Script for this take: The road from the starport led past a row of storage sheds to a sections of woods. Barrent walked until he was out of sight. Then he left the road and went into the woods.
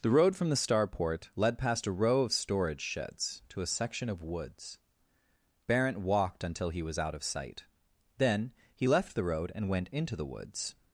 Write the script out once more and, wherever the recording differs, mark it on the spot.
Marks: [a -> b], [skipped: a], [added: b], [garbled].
The road from the starport led past a row of storage sheds to a [sections -> section] of woods. Barrent walked until he was out of sight. Then he left the road and went into the woods.